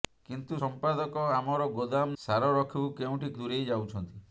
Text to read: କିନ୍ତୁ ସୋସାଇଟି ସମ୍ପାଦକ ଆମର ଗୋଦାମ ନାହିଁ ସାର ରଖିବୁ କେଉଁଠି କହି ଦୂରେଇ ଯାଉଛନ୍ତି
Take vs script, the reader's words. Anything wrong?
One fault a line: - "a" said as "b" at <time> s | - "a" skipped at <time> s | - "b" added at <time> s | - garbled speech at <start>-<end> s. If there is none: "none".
- "ସୋସାଇଟି" skipped at 0.6 s
- "ନାହିଁ" skipped at 2.1 s
- "କହି" skipped at 3.3 s